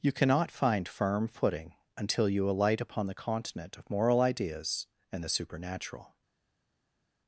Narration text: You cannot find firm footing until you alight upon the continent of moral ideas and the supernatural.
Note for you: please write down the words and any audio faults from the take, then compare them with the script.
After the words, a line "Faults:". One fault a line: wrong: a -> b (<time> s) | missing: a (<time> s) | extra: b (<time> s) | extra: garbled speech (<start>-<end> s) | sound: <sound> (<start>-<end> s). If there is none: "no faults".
You cannot find firm footing until you alight upon the continent of moral ideas and the supernatural.
Faults:
no faults